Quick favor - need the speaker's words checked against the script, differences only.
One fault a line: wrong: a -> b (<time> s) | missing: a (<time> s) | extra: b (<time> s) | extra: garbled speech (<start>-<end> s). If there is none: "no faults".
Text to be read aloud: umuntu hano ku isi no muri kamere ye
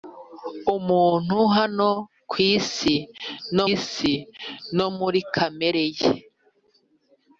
extra: isi no (3.7 s)